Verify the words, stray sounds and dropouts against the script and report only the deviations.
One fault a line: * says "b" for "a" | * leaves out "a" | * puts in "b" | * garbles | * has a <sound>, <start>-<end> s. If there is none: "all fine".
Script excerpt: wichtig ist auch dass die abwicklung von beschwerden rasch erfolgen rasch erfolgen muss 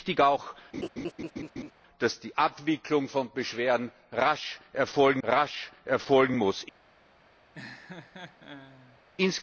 * has a laugh, 0.7-1.7 s
* has a laugh, 7.5-9.0 s